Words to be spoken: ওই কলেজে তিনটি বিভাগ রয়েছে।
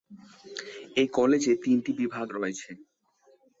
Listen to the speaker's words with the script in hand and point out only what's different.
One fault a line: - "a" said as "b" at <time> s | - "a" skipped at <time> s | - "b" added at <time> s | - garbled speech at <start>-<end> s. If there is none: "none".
- "ওই" said as "এই" at 0.9 s